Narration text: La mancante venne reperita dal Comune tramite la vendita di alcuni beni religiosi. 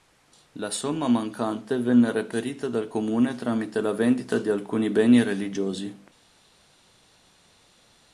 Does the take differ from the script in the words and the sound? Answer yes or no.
yes